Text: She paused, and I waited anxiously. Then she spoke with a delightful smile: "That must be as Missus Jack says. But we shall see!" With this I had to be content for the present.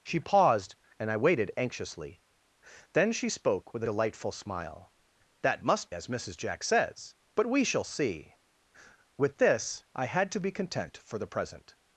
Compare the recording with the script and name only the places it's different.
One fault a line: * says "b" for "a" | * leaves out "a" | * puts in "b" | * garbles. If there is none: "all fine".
* leaves out "a"
* leaves out "be"